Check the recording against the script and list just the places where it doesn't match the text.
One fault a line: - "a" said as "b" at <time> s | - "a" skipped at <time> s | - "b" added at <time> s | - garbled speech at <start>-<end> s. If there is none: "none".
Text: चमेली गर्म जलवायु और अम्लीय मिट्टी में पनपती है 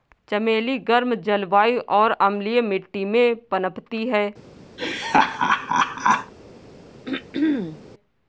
none